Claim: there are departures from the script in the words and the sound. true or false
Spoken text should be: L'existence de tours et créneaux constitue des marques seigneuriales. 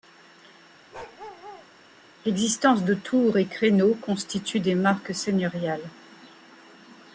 true